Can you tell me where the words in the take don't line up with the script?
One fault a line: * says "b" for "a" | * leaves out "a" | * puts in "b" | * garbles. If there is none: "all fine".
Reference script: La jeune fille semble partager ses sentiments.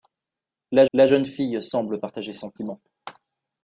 * puts in "la"
* leaves out "ses"